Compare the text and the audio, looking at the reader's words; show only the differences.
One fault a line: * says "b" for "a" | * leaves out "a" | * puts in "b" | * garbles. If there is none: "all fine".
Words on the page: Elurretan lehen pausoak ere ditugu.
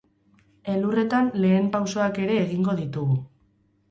* puts in "egingo"